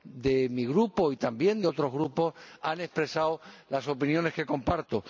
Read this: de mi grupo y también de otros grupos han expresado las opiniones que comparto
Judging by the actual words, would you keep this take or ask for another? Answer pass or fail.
pass